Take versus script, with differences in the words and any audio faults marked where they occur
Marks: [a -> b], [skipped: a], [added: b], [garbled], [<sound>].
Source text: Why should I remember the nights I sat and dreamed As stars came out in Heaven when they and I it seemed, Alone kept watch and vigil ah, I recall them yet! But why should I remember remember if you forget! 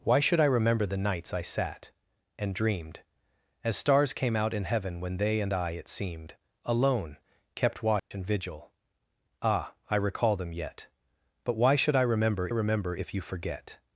Why should I remember the nights I sat and dreamed As stars came out in Heaven when they and I it seemed, Alone kept watch [dropout] and vigil ah, I recall them yet! But why should I remember remember if you forget!